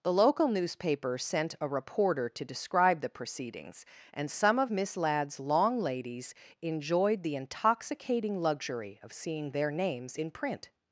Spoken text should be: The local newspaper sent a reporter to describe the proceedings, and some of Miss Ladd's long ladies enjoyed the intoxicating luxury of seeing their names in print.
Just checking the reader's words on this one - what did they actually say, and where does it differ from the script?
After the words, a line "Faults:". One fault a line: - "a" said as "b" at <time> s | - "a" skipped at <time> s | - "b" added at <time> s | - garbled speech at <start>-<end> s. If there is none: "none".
The local newspaper sent a reporter to describe the proceedings, and some of Miss Ladd's long ladies enjoyed the intoxicating luxury of seeing their names in print.
Faults:
none